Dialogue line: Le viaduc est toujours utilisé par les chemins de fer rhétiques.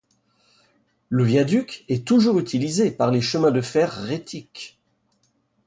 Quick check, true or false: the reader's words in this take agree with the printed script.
true